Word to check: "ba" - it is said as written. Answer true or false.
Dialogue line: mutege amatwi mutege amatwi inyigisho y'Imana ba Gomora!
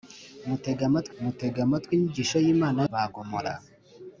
true